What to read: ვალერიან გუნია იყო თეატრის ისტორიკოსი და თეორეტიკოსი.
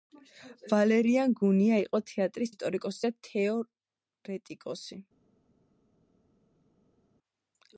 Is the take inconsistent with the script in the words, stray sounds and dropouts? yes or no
no